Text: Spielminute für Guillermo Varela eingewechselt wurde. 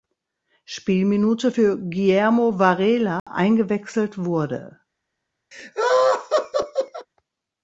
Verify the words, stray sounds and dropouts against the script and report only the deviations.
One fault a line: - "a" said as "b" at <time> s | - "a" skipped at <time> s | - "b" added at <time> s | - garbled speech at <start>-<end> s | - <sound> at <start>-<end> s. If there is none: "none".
- dropout at 3.2-3.3 s
- laugh at 5.5-7.1 s